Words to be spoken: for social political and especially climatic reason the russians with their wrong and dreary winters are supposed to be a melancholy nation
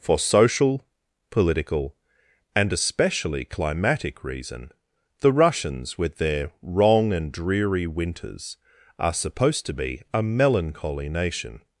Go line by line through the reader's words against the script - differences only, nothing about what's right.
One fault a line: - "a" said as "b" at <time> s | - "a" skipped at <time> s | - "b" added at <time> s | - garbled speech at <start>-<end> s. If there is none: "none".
none